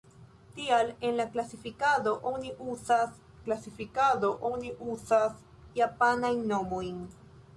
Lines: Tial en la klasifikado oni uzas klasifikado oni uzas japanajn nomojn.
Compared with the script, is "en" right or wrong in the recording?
right